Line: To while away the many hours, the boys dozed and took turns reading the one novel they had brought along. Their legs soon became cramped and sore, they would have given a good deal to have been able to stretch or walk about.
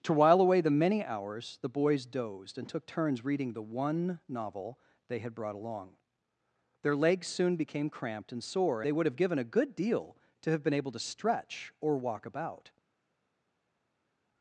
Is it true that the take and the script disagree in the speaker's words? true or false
false